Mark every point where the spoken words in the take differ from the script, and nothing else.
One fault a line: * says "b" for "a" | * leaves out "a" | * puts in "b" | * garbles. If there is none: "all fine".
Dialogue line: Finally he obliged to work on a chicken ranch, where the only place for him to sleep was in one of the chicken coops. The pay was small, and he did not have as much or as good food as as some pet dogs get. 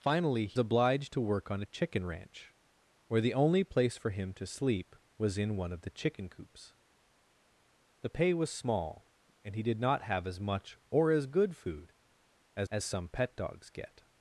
all fine